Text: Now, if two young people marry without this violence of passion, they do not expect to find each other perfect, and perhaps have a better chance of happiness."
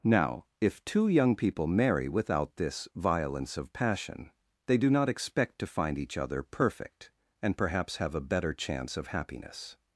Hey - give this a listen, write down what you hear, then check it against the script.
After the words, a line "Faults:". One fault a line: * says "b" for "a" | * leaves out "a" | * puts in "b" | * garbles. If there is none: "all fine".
Now, if two young people marry without this violence of passion, they do not expect to find each other perfect, and perhaps have a better chance of happiness."
Faults:
all fine